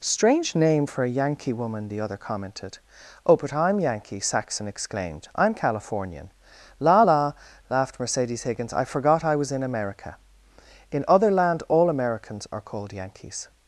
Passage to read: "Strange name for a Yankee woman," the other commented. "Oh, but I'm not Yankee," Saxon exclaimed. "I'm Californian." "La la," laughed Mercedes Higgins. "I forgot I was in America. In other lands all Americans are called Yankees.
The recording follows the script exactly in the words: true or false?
false